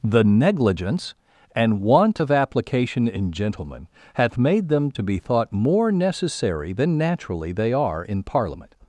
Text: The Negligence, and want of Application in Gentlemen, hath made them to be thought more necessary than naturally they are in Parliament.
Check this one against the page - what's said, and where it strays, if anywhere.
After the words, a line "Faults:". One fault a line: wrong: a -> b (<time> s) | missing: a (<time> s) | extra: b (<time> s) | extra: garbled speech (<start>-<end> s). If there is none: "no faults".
The Negligence, and want of Application in Gentlemen, hath made them to be thought more necessary than naturally they are in Parliament.
Faults:
no faults